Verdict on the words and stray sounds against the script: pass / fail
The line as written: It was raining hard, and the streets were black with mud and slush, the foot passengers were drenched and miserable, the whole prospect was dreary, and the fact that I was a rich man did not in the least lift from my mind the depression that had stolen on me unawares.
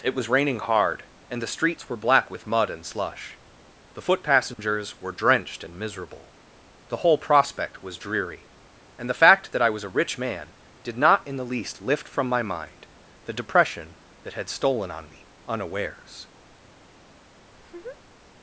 fail